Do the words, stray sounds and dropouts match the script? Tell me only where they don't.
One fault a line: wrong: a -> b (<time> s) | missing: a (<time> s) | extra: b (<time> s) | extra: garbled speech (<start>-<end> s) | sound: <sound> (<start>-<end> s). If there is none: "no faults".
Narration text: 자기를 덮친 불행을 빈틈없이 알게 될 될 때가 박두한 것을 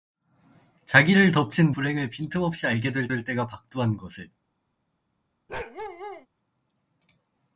sound: bark (5.5-6.3 s)